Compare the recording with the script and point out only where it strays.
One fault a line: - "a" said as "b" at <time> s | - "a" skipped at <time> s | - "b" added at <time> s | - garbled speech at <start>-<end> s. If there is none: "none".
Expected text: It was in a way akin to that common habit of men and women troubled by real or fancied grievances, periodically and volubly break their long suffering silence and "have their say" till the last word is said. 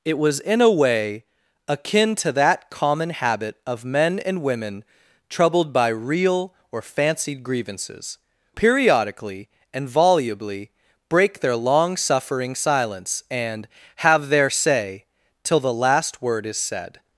none